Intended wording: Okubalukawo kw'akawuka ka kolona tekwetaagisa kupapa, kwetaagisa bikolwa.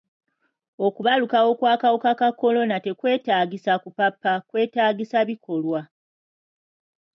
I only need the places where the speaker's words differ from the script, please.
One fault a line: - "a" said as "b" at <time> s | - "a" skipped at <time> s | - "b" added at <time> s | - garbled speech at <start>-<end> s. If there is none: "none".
none